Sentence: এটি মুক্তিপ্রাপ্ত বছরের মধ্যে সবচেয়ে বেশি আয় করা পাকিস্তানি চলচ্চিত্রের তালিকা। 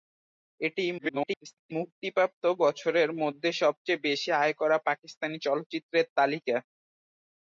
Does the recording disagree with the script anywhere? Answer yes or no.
yes